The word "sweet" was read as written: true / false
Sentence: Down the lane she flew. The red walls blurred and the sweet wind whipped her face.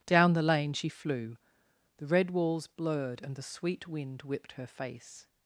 true